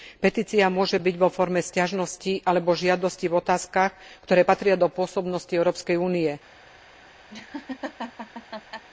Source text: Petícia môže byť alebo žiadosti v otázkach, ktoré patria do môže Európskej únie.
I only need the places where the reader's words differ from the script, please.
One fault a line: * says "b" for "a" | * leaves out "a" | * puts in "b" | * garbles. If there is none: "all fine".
* puts in "vo forme sťažnosti"
* says "pôsobnosti" for "môže"